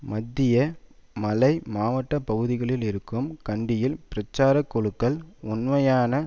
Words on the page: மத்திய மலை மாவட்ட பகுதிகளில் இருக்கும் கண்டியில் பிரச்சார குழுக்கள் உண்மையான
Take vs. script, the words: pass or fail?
pass